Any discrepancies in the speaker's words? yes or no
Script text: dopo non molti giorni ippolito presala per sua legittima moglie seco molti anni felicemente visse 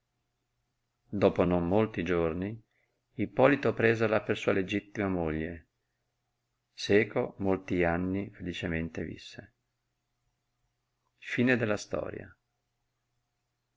no